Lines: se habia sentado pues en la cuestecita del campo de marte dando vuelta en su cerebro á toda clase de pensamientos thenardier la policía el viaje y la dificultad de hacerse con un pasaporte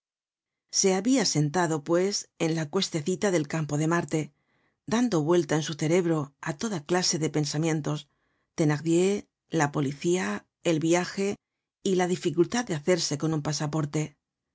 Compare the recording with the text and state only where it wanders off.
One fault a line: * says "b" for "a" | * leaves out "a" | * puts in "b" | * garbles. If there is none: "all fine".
all fine